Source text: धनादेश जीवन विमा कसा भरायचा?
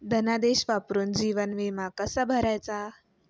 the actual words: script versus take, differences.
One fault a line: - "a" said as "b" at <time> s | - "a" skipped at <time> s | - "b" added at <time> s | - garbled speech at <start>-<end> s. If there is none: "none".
- "वापरून" added at 0.7 s